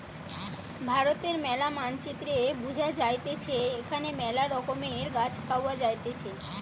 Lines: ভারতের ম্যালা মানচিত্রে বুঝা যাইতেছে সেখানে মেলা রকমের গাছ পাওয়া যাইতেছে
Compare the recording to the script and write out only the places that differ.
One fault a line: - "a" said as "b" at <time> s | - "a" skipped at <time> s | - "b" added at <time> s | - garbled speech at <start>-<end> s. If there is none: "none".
- "সেখানে" said as "এখানে" at 3.8 s